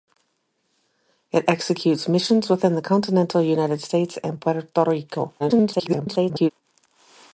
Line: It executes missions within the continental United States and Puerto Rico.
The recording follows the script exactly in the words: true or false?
false